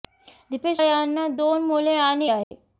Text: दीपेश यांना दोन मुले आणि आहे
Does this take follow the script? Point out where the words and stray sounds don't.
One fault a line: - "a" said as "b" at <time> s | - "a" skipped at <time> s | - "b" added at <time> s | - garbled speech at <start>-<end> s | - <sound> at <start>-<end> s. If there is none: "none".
- dropout at 2.4-2.5 s